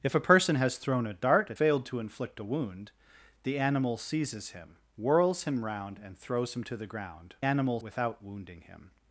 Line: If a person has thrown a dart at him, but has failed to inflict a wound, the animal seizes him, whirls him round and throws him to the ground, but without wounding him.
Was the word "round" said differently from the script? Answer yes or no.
no